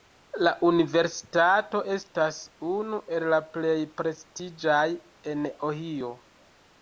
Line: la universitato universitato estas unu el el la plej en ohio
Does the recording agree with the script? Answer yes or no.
no